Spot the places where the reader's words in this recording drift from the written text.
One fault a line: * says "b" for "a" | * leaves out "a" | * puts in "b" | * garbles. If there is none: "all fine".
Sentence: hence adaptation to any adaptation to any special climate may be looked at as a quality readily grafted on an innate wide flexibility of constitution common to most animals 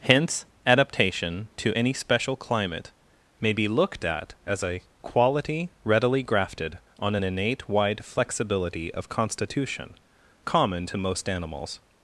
* leaves out "adaptation to any"